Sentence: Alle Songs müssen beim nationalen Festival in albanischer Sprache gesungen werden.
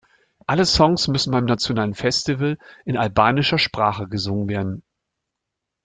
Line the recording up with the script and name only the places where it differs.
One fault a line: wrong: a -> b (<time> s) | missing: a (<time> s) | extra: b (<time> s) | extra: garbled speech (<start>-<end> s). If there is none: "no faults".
no faults